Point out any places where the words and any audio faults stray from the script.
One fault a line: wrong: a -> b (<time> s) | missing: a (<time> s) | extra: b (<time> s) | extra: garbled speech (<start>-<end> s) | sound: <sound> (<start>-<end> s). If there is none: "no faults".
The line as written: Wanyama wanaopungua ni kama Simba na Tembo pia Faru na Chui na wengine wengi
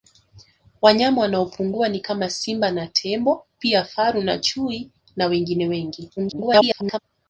extra: garbled speech (6.2-7.0 s)